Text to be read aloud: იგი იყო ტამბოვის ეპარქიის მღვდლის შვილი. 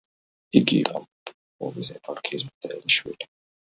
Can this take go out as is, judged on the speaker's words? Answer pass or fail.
fail